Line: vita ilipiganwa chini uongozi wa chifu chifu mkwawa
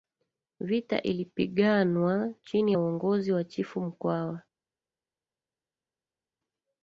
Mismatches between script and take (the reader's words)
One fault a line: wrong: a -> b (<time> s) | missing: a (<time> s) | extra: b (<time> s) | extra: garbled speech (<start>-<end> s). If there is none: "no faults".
extra: ya (2.7 s)
missing: chifu (3.8 s)